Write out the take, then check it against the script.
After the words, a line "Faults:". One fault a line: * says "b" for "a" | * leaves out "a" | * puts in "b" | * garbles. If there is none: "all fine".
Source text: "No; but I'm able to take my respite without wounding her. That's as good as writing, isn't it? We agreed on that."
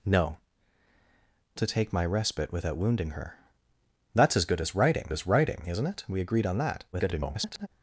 "No; to take my respite without wounding her. That's as good as writing as writing, isn't it? We agreed on that." [garbled]
Faults:
* leaves out "but I'm able"
* puts in "as writing"
* garbles